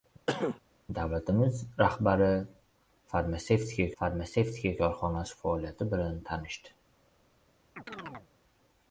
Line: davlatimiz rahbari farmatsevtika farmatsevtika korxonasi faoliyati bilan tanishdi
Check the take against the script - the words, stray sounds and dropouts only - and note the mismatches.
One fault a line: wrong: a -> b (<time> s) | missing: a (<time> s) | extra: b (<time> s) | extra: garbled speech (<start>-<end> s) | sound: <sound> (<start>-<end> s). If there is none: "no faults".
sound: cough (0.3-0.6 s)
sound: chirp (7.8-8.3 s)